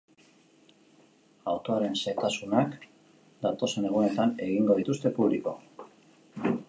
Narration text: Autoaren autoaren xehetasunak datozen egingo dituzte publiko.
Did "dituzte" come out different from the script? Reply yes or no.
no